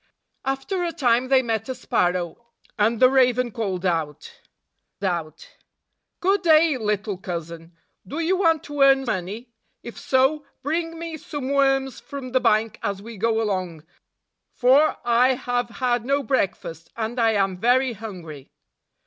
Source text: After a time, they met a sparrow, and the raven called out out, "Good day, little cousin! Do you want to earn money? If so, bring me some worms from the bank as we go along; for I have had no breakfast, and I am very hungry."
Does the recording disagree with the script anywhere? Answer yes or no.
no